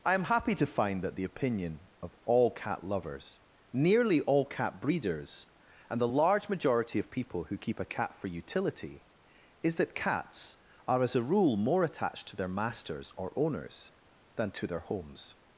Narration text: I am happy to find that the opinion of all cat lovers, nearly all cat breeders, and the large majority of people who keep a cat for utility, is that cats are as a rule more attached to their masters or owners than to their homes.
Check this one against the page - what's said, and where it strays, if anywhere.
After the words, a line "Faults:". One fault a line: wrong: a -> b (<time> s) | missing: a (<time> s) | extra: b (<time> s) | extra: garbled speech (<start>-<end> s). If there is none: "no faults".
I am happy to find that the opinion of all cat lovers, nearly all cat breeders, and the large majority of people who keep a cat for utility, is that cats are as a rule more attached to their masters or owners than to their homes.
Faults:
no faults